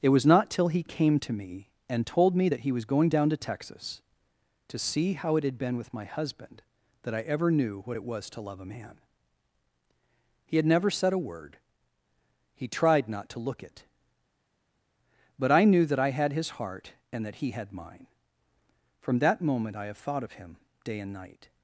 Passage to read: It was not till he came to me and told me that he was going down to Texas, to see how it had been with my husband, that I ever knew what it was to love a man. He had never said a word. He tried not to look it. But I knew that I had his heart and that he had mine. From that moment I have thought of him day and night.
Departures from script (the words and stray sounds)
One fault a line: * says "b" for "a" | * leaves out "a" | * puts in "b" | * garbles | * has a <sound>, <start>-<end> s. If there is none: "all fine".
all fine